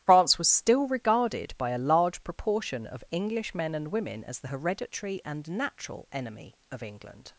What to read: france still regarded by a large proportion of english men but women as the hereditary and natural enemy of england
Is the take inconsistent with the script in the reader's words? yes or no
yes